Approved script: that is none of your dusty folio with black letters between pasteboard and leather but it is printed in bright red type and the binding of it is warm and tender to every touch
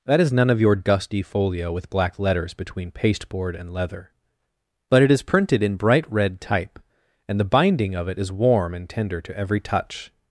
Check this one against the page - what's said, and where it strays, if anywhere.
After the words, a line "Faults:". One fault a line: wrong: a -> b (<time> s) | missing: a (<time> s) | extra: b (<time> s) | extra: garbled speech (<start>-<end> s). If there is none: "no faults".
that is none of your dusty folio with black letters between pasteboard and leather but it is printed in bright red type and the binding of it is warm and tender to every touch
Faults:
no faults